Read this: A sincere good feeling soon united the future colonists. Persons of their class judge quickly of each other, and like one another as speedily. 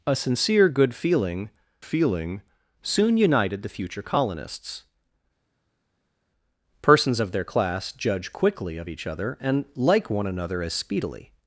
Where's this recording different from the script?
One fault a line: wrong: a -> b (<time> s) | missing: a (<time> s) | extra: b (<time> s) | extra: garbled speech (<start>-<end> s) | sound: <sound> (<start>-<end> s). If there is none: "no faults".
extra: feeling (1.8 s)